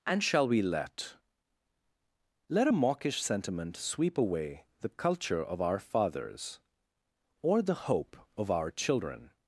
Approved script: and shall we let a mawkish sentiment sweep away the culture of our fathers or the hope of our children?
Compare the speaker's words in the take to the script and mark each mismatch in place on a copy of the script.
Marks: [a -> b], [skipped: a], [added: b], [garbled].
and shall we let [added: let] a mawkish sentiment sweep away the culture of our fathers or the hope of our children?